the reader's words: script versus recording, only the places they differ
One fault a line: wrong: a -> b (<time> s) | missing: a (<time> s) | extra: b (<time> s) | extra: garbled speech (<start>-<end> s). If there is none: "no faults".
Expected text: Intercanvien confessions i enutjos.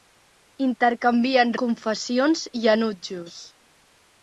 no faults